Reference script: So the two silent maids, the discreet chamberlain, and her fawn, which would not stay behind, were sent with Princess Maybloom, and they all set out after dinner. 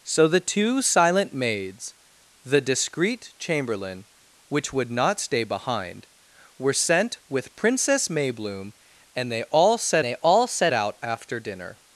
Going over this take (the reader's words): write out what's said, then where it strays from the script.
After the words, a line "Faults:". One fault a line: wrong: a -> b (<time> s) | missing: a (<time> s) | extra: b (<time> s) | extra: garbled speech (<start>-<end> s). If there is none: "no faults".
So the two silent maids, the discreet chamberlain, which would not stay behind, were sent with Princess Maybloom, and they all set they all set out after dinner.
Faults:
missing: and her fawn (4.0 s)
extra: they all set (10.0 s)